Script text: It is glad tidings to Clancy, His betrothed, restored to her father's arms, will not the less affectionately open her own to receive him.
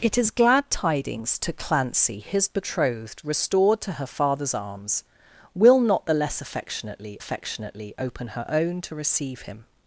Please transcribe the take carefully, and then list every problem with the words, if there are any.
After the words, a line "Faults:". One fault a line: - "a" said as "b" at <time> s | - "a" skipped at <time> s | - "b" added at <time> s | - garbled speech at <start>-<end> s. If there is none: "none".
It is glad tidings to Clancy, His betrothed, restored to her father's arms, will not the less affectionately affectionately open her own to receive him.
Faults:
- "affectionately" added at 7.2 s